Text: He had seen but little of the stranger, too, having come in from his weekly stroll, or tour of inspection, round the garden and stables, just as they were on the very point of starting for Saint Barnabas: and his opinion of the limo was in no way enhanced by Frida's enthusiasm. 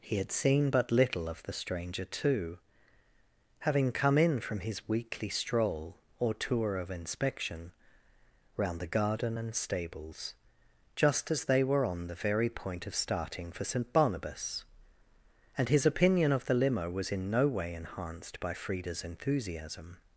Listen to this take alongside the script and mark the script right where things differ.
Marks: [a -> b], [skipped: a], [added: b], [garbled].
He had seen but little of the stranger, too, having come in from his weekly stroll, or tour of inspection, round the garden and stables, just as they were on the very point of starting for Saint Barnabas: and his opinion of the limo was in no way enhanced by Frida's enthusiasm.